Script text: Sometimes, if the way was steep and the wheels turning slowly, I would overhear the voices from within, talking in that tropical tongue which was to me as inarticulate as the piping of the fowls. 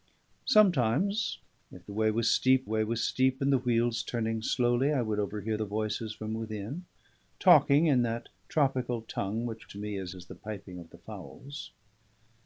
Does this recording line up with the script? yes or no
no